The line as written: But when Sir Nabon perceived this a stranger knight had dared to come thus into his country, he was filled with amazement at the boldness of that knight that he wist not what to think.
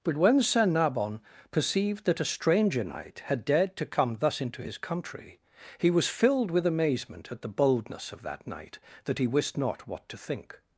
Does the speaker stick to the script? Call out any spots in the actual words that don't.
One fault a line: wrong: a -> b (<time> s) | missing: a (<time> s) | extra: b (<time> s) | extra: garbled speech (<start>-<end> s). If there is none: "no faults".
wrong: this -> that (2.0 s)